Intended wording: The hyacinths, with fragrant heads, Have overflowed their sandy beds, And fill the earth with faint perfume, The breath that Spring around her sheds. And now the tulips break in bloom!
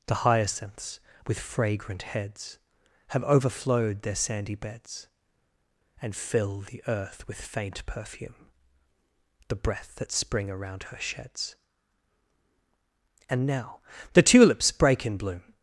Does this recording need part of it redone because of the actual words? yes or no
no